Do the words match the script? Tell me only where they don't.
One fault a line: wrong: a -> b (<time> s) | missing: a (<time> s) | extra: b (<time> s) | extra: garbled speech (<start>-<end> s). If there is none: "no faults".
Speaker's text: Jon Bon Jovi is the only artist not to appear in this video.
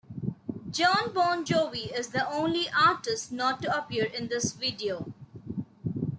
no faults